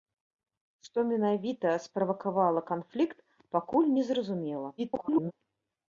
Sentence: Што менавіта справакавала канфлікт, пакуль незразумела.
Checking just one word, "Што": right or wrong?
right